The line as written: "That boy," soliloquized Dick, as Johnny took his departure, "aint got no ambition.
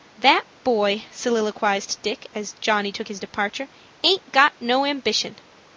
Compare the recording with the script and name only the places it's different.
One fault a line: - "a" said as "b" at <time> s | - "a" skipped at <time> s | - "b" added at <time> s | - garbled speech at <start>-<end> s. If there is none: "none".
none